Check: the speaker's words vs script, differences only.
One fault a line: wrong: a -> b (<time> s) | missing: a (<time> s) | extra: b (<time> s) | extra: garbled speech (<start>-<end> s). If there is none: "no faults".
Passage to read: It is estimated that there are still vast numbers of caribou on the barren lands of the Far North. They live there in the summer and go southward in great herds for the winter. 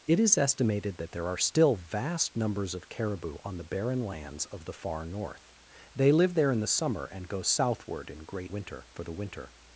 wrong: herds -> winter (8.5 s)